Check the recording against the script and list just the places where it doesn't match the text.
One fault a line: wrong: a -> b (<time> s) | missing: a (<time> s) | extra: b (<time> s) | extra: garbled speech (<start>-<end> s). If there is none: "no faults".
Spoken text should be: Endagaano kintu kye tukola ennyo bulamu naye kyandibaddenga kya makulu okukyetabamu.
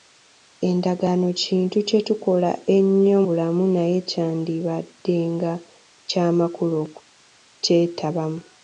no faults